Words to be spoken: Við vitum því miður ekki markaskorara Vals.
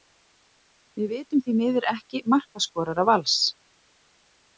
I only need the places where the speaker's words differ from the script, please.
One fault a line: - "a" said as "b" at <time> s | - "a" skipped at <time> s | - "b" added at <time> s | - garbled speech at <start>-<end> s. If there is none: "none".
none